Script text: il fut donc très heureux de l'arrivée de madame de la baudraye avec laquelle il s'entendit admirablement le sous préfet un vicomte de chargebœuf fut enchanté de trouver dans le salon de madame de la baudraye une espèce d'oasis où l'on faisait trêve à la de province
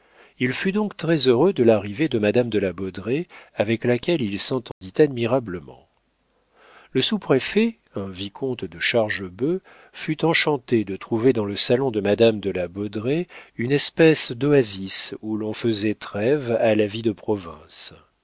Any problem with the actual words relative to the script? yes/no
yes